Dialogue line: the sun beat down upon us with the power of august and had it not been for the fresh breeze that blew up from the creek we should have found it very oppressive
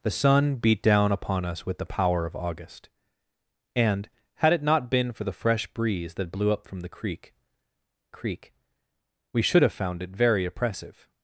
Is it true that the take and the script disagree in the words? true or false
true